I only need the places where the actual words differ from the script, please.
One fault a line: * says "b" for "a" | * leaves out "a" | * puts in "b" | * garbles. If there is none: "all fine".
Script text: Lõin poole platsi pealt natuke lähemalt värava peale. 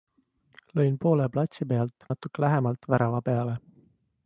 all fine